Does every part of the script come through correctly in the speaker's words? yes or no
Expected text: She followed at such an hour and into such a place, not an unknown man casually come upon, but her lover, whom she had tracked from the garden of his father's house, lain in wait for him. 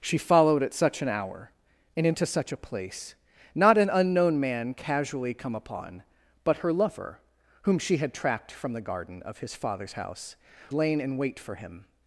yes